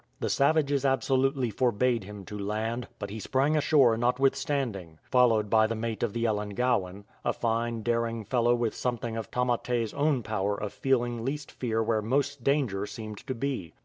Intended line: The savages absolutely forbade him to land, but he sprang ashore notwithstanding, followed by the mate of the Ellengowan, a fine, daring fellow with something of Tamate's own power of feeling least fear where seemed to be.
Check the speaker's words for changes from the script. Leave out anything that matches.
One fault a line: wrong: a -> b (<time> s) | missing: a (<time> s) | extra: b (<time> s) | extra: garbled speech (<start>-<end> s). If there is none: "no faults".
extra: most danger (12.0 s)